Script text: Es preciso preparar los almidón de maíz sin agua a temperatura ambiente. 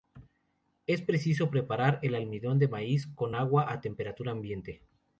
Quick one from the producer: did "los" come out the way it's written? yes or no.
no